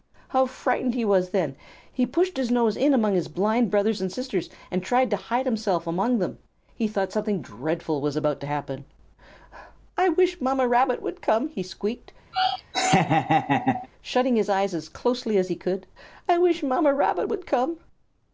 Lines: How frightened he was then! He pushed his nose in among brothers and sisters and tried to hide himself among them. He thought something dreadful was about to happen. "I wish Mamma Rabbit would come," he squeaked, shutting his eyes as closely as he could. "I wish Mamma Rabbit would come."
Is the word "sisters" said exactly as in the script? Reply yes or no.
yes